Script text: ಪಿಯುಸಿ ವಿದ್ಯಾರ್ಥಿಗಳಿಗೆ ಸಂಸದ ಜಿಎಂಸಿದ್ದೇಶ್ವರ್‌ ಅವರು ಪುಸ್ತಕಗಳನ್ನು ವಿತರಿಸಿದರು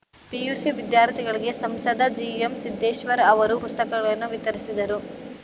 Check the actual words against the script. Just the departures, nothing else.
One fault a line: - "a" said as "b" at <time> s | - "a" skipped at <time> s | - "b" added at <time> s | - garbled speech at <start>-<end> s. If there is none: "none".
none